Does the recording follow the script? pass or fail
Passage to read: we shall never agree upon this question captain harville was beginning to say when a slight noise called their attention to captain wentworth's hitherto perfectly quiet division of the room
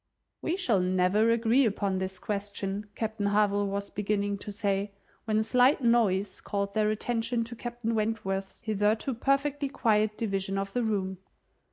pass